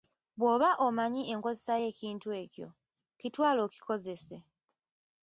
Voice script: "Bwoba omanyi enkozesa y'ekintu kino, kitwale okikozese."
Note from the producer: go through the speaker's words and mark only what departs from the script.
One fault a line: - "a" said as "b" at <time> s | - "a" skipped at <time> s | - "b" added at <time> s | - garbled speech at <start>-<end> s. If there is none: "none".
- "kino" said as "ekyo" at 2.4 s